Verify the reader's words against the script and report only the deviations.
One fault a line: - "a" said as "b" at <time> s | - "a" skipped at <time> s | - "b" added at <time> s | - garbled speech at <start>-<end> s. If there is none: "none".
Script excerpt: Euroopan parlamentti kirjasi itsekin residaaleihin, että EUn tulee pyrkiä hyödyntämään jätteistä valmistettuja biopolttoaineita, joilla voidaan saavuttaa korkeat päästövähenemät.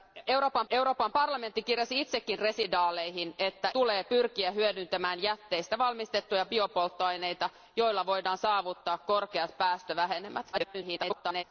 - "euroopan" added at 0.7 s
- "EUn" skipped at 3.7 s
- garbled speech at 10.5-11.4 s